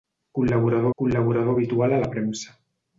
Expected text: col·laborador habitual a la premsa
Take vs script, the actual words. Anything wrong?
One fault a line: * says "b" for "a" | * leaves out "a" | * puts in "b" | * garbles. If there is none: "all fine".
* puts in "col·laborador"